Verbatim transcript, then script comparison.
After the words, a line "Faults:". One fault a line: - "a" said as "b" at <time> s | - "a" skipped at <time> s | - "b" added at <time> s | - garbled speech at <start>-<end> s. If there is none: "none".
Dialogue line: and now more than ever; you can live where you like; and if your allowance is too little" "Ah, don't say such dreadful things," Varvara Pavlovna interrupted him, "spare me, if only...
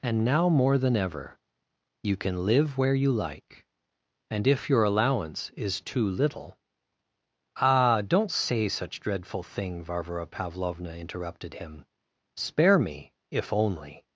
and now more than ever; you can live where you like; and if your allowance is too little" "Ah, don't say such dreadful thing," Varvara Pavlovna interrupted him, "spare me, if only...
Faults:
- "things" said as "thing" at 9.4 s